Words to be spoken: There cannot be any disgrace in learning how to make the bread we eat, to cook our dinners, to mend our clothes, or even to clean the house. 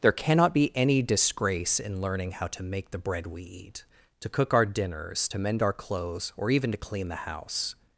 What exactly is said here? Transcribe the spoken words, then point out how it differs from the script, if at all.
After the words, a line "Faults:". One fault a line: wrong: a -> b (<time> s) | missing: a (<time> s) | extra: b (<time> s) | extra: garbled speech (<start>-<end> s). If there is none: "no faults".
There cannot be any disgrace in learning how to make the bread we eat, to cook our dinners, to mend our clothes, or even to clean the house.
Faults:
no faults